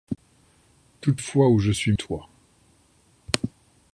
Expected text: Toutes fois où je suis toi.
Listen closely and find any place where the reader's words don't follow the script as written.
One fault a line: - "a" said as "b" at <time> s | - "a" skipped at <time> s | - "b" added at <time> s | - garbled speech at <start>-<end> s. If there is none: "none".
none